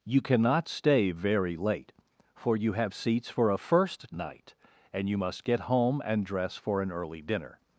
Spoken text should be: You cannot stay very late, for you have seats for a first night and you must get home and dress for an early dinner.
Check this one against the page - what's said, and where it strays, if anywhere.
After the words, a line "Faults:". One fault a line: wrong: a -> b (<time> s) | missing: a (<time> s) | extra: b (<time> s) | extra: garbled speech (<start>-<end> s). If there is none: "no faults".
You cannot stay very late, for you have seats for a first night and you must get home and dress for an early dinner.
Faults:
no faults